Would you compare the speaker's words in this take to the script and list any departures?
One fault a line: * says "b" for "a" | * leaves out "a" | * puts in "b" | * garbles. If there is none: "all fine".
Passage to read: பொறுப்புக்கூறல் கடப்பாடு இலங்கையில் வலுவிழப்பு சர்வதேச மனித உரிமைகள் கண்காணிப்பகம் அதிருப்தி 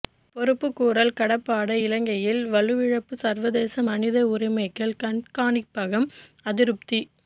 all fine